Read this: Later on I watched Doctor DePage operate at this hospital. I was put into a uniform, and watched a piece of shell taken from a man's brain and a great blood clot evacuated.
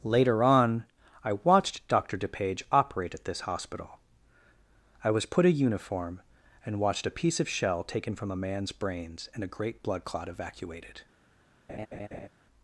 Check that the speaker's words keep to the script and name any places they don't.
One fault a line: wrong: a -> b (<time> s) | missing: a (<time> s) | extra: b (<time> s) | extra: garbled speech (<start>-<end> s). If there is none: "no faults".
missing: into (5.5 s)
wrong: brain -> brains (8.7 s)